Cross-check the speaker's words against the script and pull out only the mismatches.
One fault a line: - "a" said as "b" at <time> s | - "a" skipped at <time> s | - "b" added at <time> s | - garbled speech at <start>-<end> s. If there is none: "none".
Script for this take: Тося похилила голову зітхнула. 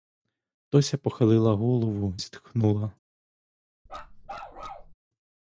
none